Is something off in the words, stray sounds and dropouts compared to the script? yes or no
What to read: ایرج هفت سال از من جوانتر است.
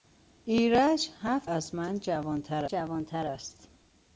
yes